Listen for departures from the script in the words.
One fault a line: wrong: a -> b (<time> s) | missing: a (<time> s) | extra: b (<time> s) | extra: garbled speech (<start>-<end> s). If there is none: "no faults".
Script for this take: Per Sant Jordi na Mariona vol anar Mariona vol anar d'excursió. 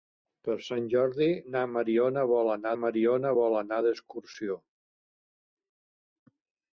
no faults